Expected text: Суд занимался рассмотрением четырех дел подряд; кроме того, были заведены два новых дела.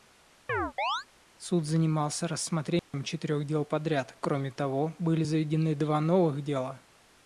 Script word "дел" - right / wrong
right